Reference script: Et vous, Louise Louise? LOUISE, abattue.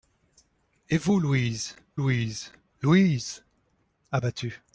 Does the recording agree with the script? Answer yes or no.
yes